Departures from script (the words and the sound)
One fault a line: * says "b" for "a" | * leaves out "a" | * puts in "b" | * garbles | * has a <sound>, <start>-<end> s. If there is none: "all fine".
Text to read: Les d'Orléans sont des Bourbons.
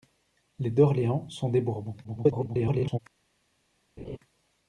* garbles
* has a laugh, 4.0-4.2 s